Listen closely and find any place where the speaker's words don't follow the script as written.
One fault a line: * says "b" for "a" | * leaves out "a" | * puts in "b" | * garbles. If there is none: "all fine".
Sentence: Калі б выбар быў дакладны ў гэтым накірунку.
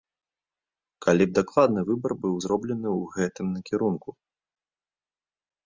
* puts in "дакладны"
* says "зроблены" for "дакладны"